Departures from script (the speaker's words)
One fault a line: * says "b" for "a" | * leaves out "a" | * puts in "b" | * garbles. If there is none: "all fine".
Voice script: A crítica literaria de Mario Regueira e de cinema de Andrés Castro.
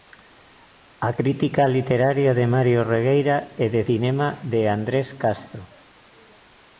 all fine